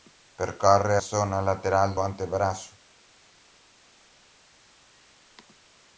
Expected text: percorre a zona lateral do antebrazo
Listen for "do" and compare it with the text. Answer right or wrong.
wrong